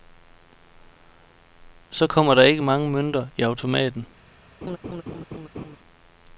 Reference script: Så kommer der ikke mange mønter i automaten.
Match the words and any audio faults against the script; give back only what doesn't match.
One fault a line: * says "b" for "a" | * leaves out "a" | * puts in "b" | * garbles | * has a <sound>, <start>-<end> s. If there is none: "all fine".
* has a laugh, 4.6-5.8 s